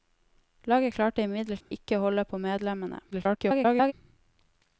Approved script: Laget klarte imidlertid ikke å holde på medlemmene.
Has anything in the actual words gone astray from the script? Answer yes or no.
yes